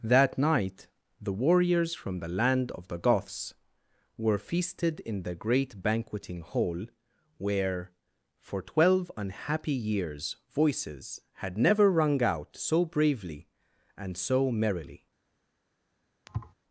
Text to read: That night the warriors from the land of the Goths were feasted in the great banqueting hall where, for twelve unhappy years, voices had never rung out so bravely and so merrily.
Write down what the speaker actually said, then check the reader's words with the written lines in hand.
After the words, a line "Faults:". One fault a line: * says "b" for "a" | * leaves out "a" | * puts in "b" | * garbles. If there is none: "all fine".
That night the warriors from the land of the Goths were feasted in the great banqueting hall where, for twelve unhappy years, voices had never rung out so bravely and so merrily.
Faults:
all fine